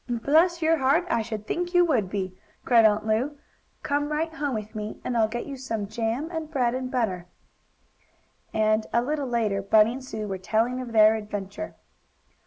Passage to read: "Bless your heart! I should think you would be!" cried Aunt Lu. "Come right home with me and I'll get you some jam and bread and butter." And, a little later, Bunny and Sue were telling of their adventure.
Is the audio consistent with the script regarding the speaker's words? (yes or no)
yes